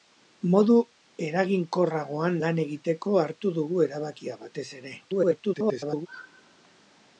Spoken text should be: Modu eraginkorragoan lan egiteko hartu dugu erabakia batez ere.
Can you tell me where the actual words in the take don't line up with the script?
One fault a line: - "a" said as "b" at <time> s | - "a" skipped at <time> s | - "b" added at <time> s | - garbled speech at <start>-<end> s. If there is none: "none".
- garbled speech at 5.0-6.1 s